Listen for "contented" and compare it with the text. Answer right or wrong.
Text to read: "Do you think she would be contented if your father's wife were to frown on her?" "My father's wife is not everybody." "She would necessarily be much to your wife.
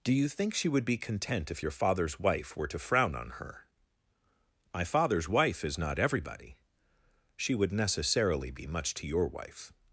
wrong